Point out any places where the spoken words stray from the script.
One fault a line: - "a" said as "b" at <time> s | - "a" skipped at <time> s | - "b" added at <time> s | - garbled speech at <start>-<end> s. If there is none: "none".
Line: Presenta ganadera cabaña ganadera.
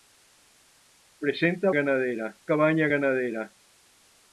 none